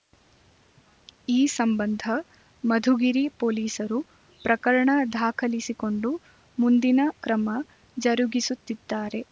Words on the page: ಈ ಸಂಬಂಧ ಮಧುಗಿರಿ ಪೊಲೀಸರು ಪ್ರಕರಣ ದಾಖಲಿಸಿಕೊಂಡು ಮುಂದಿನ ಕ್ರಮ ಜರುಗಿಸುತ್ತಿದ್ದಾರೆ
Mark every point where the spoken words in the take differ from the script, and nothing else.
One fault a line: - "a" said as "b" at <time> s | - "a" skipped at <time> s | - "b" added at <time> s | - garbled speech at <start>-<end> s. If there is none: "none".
none